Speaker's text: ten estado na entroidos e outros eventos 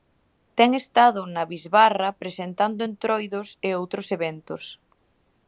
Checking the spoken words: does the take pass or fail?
fail